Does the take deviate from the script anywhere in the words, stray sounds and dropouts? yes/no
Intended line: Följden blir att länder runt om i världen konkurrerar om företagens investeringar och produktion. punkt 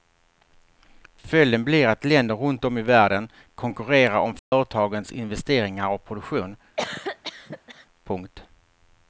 yes